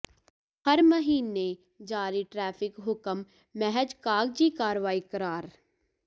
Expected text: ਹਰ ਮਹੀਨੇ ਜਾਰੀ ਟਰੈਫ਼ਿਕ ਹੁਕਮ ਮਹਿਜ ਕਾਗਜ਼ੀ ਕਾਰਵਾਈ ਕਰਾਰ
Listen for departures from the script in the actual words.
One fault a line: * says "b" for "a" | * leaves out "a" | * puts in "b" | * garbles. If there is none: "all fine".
all fine